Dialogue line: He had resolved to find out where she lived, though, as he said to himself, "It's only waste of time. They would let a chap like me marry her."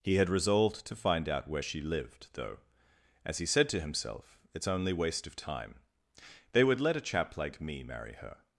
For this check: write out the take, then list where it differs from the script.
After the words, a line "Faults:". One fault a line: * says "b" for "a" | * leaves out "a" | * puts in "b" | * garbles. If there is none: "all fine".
He had resolved to find out where she lived, though, as he said to himself, "It's only waste of time. They would let a chap like me marry her."
Faults:
all fine